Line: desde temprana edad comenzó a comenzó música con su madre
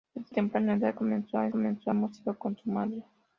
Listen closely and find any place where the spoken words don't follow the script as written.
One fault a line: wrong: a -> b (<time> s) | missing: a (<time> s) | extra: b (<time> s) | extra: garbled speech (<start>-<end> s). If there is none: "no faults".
no faults